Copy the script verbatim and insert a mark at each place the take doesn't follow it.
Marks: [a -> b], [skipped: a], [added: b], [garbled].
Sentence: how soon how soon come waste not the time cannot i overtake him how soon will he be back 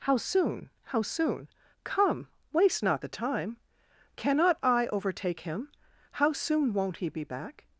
how soon how soon come waste not the time cannot i overtake him how soon [will -> won't] he be back